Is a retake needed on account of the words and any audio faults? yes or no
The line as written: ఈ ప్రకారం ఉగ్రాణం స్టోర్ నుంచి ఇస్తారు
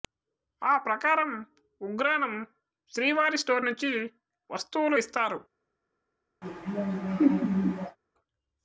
yes